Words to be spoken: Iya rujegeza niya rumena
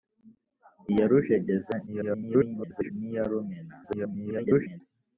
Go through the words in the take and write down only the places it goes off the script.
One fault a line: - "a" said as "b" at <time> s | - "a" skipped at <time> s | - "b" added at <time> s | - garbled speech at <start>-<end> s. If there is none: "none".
- garbled speech at 1.9-2.9 s
- garbled speech at 3.8-4.8 s